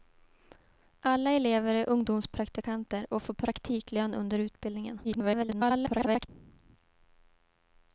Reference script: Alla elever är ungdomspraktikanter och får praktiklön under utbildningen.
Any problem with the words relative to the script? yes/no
yes